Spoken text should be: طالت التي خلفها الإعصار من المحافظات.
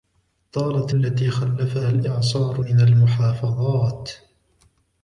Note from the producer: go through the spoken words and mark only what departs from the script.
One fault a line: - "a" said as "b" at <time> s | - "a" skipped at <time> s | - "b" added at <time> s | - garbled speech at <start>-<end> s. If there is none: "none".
none